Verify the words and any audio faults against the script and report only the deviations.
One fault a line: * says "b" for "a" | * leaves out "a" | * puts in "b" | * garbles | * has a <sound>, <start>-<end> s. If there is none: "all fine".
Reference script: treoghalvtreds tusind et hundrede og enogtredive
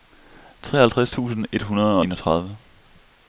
* leaves out "og"